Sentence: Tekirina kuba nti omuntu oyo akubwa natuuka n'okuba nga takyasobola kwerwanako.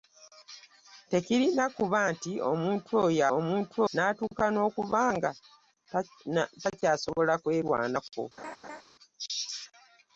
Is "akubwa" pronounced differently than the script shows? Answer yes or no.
yes